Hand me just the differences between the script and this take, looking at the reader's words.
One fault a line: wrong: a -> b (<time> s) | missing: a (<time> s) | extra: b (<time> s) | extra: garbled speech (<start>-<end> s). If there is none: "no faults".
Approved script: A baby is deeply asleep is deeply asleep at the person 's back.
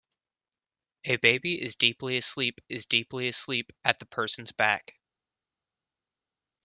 no faults